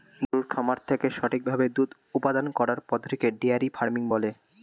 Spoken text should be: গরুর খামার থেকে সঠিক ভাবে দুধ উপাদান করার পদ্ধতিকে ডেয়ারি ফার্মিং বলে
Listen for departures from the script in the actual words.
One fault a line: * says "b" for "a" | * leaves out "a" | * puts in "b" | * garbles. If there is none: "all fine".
all fine